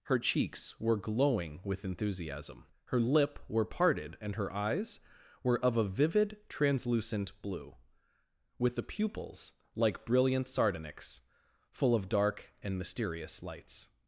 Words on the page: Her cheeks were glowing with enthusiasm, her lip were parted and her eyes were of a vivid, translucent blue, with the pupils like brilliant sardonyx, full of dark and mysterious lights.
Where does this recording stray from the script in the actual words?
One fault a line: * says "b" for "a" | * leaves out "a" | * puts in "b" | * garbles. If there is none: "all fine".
all fine